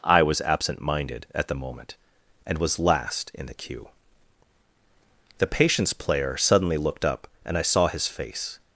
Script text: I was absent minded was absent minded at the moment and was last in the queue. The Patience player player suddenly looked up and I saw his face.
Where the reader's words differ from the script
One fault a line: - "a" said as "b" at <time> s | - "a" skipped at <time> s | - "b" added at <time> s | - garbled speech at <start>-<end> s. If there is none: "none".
- "was absent minded" skipped at 1.3 s
- "player" skipped at 6.4 s